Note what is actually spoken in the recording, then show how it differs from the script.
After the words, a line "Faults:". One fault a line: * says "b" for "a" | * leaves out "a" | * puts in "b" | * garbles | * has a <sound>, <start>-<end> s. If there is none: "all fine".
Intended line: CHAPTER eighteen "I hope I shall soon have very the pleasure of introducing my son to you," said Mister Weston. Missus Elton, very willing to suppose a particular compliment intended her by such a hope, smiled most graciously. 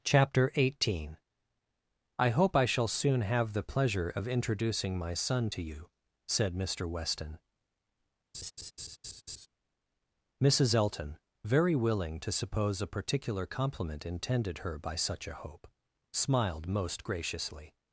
CHAPTER eighteen "I hope I shall soon have the pleasure of introducing my son to you," said Mister Weston. Missus Elton, very willing to suppose a particular compliment intended her by such a hope, smiled most graciously.
Faults:
* leaves out "very"
* has a laugh, 8.3-9.5 s